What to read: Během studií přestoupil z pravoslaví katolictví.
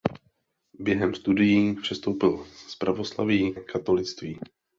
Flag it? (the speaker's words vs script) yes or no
no